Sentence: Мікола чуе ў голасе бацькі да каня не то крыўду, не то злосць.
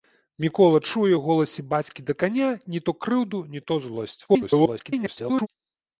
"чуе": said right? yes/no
yes